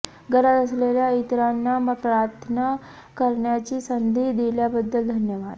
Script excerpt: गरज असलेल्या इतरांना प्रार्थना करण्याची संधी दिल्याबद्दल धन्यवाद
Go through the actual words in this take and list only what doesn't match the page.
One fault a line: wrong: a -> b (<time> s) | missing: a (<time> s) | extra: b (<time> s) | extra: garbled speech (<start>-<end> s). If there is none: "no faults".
no faults